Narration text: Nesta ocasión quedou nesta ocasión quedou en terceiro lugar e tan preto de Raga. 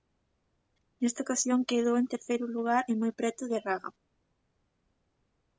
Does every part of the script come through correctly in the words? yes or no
no